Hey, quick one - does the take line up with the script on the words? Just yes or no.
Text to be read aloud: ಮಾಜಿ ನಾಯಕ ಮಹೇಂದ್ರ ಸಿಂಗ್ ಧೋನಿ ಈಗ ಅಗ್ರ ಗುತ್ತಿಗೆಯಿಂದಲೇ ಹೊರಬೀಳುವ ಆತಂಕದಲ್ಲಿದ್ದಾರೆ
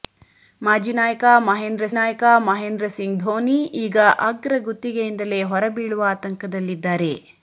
no